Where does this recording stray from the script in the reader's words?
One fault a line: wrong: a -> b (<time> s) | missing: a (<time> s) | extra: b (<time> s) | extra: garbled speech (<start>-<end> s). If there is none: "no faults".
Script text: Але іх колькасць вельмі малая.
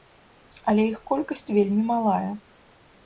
no faults